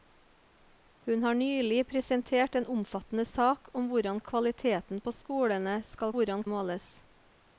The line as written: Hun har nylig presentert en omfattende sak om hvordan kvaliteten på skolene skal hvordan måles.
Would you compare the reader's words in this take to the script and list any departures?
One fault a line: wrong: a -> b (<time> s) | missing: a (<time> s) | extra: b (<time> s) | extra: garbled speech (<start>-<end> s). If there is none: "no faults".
no faults